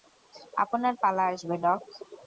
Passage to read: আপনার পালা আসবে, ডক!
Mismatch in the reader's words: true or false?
false